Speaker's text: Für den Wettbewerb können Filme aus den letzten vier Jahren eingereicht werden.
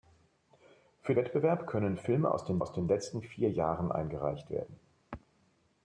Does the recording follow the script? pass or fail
fail